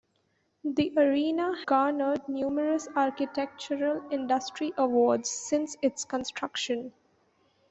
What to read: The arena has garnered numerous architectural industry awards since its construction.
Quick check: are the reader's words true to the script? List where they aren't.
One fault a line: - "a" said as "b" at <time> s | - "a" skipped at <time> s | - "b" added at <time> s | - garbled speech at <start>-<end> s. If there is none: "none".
- "has" skipped at 1.6 s